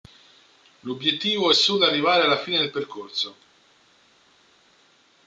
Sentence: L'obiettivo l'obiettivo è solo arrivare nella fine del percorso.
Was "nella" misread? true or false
true